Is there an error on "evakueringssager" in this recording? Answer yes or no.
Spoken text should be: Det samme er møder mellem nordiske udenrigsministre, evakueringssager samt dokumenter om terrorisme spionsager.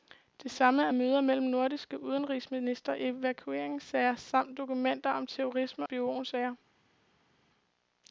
no